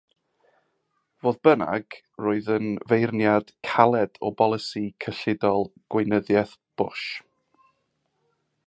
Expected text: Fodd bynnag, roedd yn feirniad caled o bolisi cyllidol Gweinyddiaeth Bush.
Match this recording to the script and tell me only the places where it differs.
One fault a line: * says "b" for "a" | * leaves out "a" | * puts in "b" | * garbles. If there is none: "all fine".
all fine